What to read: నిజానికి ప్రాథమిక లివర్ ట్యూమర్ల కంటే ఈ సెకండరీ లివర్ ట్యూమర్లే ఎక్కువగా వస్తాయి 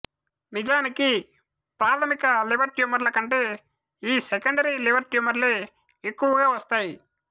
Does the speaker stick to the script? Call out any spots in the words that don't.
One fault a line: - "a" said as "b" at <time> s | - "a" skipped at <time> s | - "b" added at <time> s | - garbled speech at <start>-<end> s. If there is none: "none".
none